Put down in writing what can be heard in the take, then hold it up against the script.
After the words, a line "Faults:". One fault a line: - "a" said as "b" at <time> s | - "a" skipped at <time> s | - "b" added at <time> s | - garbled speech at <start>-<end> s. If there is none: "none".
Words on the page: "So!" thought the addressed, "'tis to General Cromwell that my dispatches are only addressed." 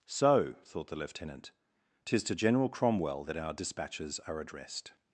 "So!" thought the lieutenant, "'tis to General Cromwell that our dispatches are addressed."
Faults:
- "addressed" said as "lieutenant" at 0.9 s
- "my" said as "our" at 3.4 s
- "only" skipped at 4.4 s